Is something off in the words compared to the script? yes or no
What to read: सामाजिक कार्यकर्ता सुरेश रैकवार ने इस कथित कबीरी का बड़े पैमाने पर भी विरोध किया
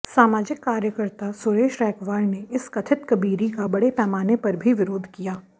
no